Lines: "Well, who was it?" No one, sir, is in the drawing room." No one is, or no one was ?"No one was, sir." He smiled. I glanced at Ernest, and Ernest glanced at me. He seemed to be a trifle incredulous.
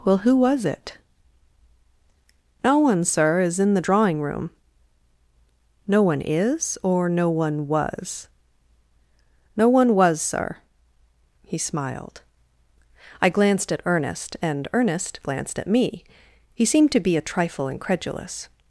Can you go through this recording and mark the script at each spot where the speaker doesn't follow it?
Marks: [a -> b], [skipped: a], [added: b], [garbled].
"Well, who was it?" No one, sir, is in the drawing room." No one is, or no one was ?"No one was, sir." He smiled. I glanced at Ernest, and Ernest glanced at me. He seemed to be a trifle incredulous.